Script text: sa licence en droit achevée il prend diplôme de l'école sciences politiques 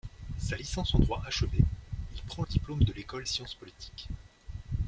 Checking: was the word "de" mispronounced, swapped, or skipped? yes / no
no